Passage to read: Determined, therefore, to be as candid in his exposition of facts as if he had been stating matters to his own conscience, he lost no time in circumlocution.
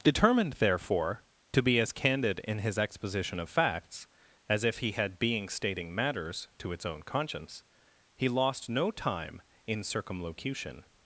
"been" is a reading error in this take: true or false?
true